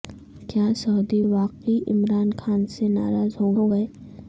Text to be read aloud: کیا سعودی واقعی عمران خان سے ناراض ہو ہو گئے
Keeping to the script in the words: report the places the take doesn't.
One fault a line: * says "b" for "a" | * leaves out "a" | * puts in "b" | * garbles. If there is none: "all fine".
all fine